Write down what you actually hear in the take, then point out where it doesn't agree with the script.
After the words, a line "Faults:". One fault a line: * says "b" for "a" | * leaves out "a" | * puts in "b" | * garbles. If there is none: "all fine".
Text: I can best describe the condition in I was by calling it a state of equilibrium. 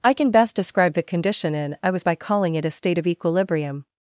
I can best describe the condition in I was by calling it a state of equilibrium.
Faults:
all fine